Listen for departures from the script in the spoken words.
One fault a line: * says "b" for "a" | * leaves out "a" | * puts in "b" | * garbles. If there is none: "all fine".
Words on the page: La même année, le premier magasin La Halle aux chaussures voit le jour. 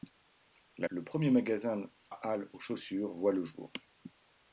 * leaves out "même année"
* leaves out "La"